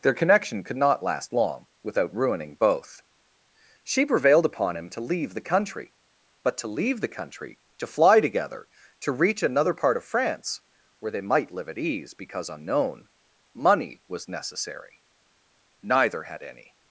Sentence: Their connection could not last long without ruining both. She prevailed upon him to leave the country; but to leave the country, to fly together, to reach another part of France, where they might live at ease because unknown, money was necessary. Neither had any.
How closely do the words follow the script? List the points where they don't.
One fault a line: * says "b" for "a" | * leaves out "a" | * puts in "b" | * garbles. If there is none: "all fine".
all fine